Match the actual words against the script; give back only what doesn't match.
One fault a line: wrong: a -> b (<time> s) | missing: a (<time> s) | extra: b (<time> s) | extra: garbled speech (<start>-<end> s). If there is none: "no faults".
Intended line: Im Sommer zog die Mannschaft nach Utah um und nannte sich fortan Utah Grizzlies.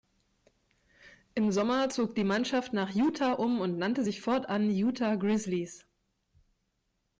no faults